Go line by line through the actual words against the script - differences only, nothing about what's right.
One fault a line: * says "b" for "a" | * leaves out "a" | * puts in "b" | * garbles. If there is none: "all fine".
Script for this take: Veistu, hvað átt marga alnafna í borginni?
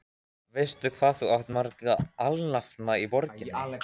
* puts in "þú"